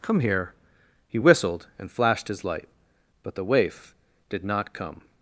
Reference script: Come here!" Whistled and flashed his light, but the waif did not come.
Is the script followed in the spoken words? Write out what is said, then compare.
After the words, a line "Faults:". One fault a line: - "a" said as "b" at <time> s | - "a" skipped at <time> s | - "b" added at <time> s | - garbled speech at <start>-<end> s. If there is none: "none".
Come here!" He whistled and flashed his light, but the waif did not come.
Faults:
- "He" added at 1.1 s